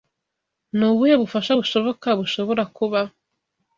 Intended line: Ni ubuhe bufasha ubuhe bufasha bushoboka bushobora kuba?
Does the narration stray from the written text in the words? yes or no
yes